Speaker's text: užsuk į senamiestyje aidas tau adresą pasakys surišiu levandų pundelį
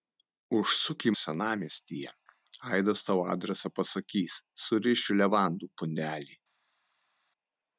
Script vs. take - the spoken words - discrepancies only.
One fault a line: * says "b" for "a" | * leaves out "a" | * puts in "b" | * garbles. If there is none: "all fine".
all fine